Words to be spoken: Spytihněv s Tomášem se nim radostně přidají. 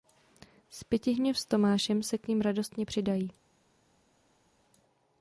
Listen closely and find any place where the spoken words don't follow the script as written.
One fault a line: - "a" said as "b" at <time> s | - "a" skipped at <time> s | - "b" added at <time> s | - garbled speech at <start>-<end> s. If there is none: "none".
- "k" added at 2.2 s